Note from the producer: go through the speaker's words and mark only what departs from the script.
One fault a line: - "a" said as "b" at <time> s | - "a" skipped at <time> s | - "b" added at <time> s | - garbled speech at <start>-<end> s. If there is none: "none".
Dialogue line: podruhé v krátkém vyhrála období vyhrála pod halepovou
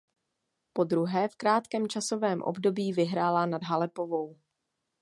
- "vyhrála" said as "časovém" at 1.9 s
- "pod" said as "nad" at 3.4 s